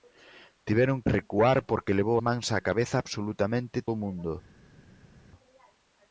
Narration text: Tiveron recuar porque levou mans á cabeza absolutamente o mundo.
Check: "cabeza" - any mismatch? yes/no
no